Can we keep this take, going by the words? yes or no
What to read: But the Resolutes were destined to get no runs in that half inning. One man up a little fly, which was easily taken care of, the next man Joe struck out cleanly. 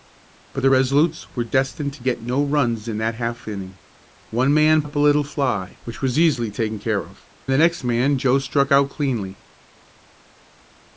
yes